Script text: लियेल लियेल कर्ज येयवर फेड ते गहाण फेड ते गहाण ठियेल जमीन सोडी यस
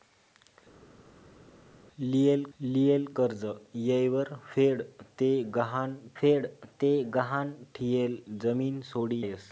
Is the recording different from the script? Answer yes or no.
no